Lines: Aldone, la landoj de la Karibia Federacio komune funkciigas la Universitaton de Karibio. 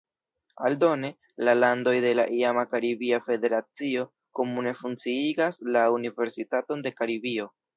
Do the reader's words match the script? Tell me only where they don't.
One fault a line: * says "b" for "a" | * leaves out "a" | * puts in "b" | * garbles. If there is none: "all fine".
* puts in "iama"